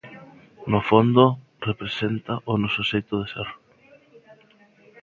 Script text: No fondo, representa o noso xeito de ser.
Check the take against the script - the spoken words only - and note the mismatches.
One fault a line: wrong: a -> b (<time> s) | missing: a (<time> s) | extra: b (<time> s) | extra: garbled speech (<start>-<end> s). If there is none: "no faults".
no faults